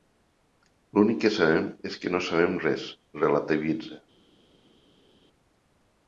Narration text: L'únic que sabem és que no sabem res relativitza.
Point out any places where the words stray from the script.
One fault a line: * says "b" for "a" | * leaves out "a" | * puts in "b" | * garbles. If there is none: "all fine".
all fine